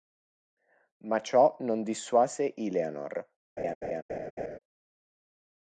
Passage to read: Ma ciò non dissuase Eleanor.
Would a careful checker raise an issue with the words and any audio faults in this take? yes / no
yes